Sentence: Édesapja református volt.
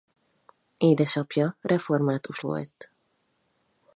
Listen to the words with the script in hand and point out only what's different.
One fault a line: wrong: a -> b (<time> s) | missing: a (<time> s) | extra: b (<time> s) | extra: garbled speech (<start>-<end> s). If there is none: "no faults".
no faults